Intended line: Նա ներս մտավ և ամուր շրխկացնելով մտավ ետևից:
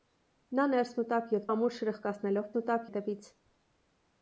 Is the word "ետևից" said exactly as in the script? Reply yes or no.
yes